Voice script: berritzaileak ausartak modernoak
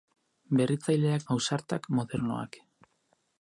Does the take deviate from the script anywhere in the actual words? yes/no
no